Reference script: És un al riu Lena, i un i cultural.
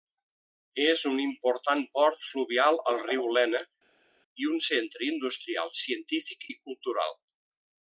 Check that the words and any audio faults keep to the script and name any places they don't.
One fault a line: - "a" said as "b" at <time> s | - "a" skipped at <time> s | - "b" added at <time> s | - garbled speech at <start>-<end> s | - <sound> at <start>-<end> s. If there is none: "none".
- "important port fluvial" added at 1.2 s
- "centre industrial científic" added at 4.7 s